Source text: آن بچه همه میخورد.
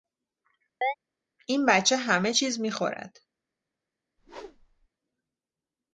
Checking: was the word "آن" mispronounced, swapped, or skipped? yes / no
yes